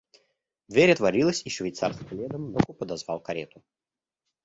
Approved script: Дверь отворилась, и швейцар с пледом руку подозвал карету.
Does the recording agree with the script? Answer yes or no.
yes